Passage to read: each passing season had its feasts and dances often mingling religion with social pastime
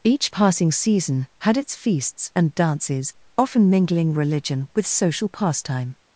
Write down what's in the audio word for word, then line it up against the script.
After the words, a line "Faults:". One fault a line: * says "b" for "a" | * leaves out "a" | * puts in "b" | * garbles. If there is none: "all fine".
each passing season had its feasts and dances often mingling religion with social pastime
Faults:
all fine